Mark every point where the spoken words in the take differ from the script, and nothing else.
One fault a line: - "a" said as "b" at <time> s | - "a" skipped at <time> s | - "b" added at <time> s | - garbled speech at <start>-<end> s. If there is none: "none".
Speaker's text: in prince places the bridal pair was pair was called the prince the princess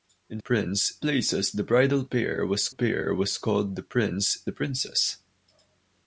none